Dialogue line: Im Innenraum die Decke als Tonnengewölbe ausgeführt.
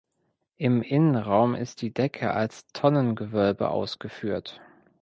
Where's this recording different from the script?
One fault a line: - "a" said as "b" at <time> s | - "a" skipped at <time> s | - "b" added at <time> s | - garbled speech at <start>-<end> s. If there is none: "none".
- "ist" added at 1.5 s